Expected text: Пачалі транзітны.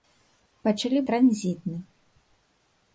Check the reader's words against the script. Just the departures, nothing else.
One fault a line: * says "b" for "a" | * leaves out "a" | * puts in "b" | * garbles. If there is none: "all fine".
all fine